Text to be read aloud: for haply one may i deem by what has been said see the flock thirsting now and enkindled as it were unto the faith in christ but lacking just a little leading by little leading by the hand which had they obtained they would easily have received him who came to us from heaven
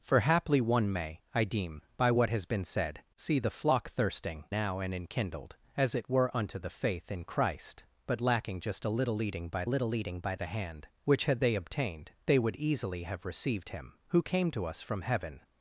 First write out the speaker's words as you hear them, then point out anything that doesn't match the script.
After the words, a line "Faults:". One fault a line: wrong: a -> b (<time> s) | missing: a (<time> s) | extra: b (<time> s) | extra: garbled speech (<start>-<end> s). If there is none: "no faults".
for haply one may i deem by what has been said see the flock thirsting now and enkindled as it were unto the faith in christ but lacking just a little leading by little leading by the hand which had they obtained they would easily have received him who came to us from heaven
Faults:
no faults